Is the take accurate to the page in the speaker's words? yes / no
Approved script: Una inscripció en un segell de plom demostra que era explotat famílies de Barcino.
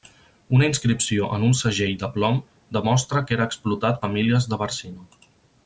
yes